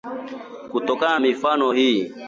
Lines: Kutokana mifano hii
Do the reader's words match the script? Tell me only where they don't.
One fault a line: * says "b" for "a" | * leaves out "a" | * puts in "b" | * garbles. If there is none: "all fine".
all fine